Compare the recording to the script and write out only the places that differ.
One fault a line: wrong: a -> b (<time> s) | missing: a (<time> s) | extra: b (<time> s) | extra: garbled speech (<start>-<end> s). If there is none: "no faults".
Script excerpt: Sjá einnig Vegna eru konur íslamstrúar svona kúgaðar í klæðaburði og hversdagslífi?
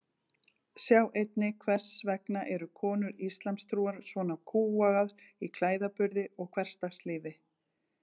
extra: Hvers (1.6 s)